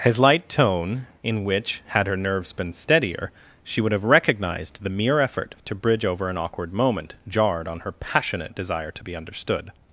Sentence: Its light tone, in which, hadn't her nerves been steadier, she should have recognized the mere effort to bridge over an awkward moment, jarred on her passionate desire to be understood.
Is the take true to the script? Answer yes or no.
no